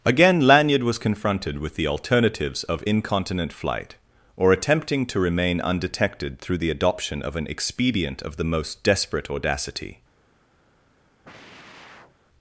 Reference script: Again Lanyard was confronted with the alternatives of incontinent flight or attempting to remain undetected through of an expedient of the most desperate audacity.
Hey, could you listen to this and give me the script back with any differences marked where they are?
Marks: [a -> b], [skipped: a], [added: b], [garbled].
Again Lanyard was confronted with the alternatives of incontinent flight or attempting to remain undetected through [added: the adoption] of an expedient of the most desperate audacity.